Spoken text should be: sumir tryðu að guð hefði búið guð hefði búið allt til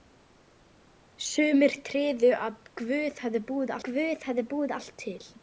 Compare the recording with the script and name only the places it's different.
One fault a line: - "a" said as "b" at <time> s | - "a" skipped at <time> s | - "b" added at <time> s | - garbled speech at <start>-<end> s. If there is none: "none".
none